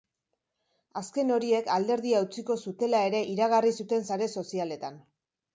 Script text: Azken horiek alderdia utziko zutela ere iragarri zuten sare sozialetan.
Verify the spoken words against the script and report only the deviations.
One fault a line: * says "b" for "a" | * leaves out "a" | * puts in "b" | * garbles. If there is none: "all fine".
all fine